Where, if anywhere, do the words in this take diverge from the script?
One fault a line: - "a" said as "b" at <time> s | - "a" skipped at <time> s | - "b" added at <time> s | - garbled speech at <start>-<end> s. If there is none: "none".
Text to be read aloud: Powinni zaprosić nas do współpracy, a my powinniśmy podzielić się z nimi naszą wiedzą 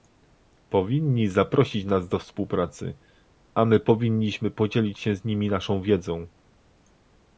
none